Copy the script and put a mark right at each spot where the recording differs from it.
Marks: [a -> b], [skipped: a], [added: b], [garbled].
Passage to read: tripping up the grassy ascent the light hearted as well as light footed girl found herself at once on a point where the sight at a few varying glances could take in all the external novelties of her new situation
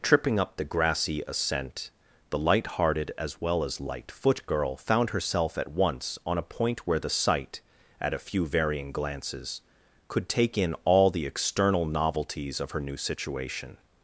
tripping up the grassy ascent the light hearted as well as light [footed -> foot] girl found herself at once on a point where the sight at a few varying glances could take in all the external novelties of her new situation